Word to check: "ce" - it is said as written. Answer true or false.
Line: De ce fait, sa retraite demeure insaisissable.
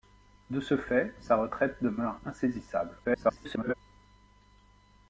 true